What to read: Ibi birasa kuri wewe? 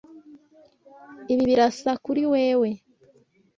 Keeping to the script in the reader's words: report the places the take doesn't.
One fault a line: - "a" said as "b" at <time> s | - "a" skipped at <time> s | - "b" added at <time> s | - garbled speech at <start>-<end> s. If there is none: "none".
none